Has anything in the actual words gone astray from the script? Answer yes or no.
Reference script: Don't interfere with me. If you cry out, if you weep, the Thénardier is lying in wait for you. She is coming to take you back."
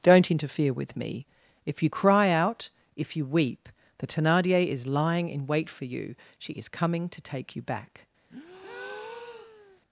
no